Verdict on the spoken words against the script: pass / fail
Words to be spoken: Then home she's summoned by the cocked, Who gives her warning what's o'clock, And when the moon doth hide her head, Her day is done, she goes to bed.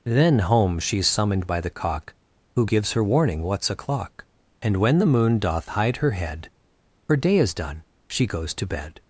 fail